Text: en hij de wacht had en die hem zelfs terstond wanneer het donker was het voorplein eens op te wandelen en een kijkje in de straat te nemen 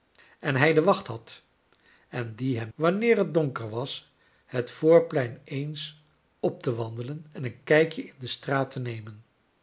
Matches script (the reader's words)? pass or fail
fail